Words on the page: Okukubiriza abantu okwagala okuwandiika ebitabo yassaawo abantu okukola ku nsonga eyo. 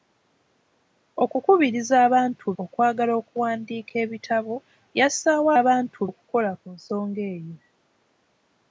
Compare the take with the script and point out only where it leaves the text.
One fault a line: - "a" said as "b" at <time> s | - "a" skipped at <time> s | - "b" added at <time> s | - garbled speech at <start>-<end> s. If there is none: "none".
none